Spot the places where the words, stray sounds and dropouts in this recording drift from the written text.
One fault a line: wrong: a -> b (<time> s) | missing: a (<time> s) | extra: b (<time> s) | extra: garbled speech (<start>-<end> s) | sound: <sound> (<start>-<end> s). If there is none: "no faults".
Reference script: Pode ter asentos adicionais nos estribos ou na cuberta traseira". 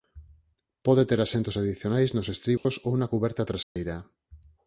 sound: dropout (2.6-2.7 s)
sound: dropout (3.6-3.8 s)